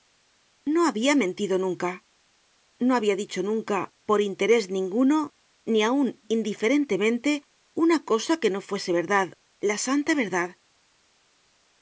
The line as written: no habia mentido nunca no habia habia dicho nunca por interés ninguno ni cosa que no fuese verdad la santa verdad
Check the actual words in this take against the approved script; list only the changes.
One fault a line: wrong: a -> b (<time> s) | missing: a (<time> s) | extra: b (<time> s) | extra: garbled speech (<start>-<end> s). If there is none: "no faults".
missing: habia (3.1 s)
extra: aun indiferentemente una (5.9 s)